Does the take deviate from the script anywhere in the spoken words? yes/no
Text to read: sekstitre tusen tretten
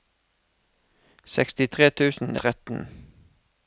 no